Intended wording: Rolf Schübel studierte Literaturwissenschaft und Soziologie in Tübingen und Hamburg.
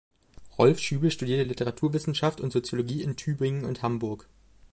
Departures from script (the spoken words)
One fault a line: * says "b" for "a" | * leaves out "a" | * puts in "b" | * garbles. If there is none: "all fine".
all fine